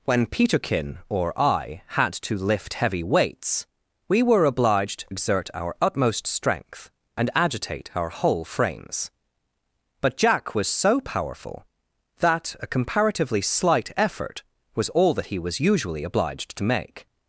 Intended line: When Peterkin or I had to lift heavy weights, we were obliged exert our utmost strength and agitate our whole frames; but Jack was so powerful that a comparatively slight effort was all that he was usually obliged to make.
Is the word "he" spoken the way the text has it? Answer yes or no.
yes